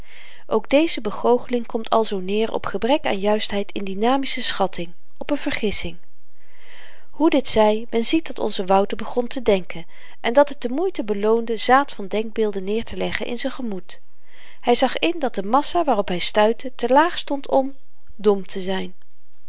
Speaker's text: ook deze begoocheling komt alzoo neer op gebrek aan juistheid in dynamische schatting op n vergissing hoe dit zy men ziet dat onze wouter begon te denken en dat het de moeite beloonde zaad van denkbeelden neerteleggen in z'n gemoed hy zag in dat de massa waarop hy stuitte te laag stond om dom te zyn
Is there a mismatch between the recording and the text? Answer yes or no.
no